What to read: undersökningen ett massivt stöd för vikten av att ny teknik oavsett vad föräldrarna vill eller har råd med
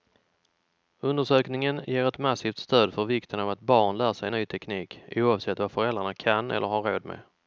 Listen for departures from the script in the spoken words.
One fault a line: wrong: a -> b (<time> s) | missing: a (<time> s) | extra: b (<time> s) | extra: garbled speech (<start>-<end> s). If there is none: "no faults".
extra: ger (1.9 s)
extra: barn lär sig (3.6 s)
wrong: vill -> kan (6.1 s)